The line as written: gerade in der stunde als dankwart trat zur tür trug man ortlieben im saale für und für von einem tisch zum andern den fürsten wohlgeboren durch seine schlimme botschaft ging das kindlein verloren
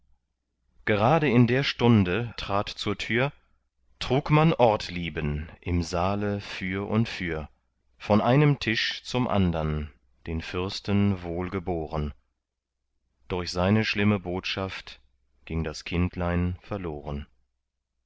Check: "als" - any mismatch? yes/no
yes